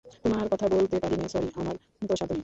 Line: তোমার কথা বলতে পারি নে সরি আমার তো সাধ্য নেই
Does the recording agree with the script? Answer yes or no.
yes